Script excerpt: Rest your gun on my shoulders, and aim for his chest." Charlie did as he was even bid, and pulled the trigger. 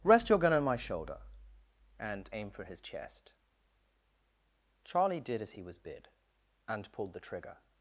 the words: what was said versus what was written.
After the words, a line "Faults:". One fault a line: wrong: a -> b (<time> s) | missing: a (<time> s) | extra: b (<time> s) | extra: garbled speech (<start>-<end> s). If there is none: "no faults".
Rest your gun on my shoulder, and aim for his chest." Charlie did as he was bid, and pulled the trigger.
Faults:
wrong: shoulders -> shoulder (0.8 s)
missing: even (5.8 s)